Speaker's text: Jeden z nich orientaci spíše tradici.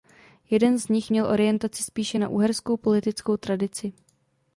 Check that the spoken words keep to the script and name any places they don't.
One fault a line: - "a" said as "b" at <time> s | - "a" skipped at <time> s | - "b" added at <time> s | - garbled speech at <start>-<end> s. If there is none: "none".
- "měl" added at 1.1 s
- "na uherskou politickou" added at 2.2 s